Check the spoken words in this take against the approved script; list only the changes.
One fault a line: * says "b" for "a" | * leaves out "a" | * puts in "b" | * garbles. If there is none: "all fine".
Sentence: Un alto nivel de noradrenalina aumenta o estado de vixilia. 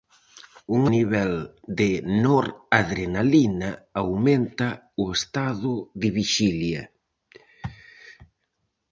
* leaves out "alto"